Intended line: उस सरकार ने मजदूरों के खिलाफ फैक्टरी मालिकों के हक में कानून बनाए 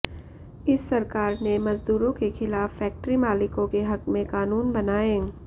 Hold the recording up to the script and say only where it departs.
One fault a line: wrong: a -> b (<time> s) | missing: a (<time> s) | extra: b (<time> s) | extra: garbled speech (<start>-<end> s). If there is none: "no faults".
wrong: उस -> इस (0.7 s)